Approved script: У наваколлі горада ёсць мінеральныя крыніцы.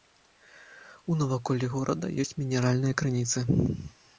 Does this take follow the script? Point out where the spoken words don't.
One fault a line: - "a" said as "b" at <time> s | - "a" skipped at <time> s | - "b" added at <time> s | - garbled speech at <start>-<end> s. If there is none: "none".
none